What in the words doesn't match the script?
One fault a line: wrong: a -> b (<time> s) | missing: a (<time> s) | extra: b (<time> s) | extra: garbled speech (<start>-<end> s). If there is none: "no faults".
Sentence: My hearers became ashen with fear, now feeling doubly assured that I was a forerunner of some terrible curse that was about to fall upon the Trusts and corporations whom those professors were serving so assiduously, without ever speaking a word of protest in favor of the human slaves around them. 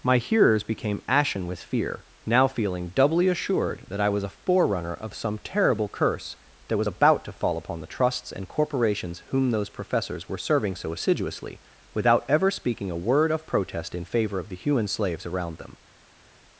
no faults